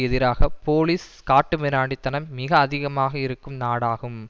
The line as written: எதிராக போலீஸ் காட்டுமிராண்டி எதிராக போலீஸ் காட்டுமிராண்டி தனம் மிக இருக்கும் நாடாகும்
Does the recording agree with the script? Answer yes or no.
no